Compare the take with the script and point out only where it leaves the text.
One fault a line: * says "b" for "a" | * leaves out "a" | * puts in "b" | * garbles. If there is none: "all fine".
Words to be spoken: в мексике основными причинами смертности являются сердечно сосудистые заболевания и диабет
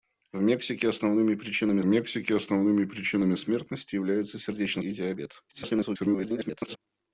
* puts in "мексике основными причинами"
* leaves out "сосудистые заболевания"
* garbles